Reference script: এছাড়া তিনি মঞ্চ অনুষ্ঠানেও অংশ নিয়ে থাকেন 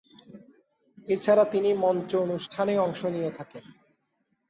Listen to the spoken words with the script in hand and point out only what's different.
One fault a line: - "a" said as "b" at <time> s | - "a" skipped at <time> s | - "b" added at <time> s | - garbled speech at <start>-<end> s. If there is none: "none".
none